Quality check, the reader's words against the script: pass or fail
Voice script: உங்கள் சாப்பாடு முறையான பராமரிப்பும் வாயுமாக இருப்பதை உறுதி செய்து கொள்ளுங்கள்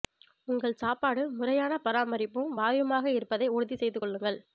pass